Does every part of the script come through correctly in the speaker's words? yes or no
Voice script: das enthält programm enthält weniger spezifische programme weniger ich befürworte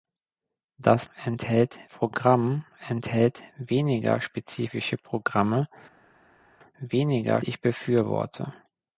yes